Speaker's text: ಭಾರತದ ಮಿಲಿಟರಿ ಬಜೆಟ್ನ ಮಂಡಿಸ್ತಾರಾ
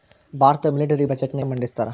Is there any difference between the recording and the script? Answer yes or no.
no